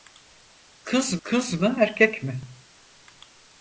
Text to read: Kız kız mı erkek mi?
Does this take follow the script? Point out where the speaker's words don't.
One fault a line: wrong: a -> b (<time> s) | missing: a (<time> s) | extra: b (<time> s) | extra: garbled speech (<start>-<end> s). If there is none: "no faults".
no faults